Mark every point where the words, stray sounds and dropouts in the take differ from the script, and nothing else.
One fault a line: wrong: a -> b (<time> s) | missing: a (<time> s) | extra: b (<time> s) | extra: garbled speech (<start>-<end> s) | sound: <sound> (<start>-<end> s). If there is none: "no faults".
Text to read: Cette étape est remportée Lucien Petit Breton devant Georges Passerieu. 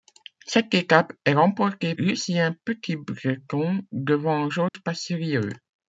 sound: dropout (4.7-4.7 s)